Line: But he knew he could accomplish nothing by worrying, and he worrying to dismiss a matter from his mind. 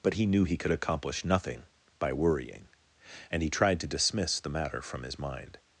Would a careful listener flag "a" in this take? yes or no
yes